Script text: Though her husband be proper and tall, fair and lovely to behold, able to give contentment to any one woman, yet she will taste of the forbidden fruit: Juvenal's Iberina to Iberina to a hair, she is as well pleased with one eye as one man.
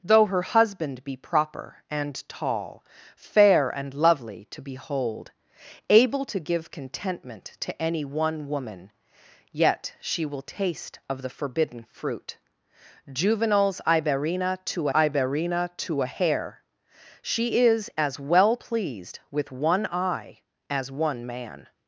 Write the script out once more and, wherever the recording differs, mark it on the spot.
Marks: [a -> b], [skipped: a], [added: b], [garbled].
Though her husband be proper and tall, fair and lovely to behold, able to give contentment to any one woman, yet she will taste of the forbidden fruit: Juvenal's Iberina to Iberina to a hair, she is as well pleased with one eye as one man.